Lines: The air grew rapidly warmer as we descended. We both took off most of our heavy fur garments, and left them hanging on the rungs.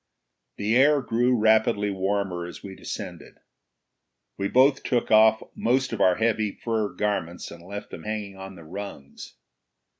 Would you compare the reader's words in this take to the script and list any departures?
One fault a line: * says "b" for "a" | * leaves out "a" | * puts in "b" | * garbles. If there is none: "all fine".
all fine